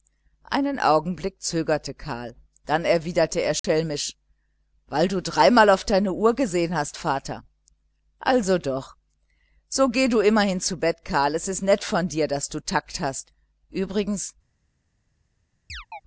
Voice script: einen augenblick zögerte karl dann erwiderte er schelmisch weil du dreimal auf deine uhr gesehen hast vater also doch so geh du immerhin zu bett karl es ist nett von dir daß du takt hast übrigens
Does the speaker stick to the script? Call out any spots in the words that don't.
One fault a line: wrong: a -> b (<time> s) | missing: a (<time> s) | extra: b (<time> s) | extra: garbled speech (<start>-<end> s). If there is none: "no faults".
no faults